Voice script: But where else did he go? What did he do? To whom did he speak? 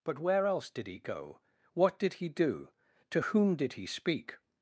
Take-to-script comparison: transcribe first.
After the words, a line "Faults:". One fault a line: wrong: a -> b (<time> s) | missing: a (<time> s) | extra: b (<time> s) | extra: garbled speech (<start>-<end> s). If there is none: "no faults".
But where else did he go? What did he do? To whom did he speak?
Faults:
no faults